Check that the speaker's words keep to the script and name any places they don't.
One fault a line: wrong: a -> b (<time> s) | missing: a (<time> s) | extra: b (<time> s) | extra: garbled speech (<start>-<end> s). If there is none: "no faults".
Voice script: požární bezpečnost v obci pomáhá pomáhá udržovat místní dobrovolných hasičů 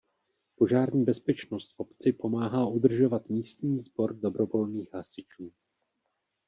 missing: pomáhá (2.7 s)
extra: sbor (3.8 s)